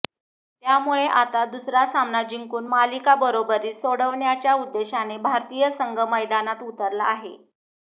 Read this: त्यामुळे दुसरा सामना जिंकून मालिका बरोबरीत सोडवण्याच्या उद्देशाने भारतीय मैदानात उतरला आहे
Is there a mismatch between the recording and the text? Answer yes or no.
yes